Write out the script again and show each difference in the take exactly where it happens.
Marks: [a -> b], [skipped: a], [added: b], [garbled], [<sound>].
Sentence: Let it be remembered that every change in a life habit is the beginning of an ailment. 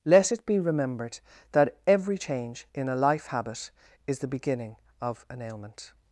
Let it be remembered that every change in a life habit is the beginning of an ailment.